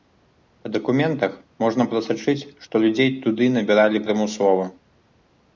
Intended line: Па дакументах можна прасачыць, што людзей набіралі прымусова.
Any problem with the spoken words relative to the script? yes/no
yes